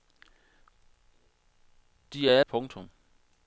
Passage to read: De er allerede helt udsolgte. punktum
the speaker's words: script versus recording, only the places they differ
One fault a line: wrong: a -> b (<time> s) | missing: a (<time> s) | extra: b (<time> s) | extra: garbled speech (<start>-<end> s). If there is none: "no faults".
missing: allerede helt udsolgte (2.4 s)